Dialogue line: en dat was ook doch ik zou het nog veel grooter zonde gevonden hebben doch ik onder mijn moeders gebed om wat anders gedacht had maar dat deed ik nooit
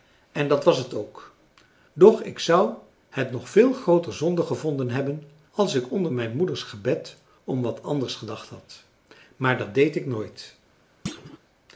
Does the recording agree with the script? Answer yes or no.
no